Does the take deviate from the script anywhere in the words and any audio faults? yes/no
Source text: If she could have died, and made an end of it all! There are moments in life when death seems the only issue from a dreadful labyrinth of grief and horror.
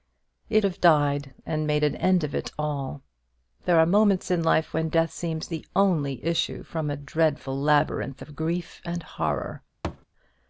yes